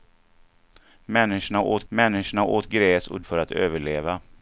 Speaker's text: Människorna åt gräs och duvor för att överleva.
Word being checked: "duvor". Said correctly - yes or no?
no